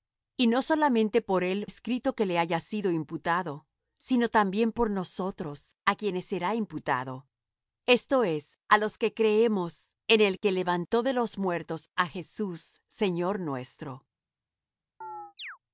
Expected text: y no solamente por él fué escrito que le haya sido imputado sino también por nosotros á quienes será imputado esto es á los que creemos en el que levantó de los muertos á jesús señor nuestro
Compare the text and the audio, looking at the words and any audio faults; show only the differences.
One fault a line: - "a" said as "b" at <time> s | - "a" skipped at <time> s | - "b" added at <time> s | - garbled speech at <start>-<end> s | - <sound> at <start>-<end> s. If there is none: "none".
- "fué" skipped at 1.7 s
- chirp at 15.0-15.6 s